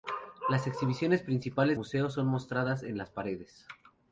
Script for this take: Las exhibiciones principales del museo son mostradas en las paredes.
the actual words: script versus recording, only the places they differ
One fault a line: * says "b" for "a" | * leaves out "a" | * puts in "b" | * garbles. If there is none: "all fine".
* leaves out "del"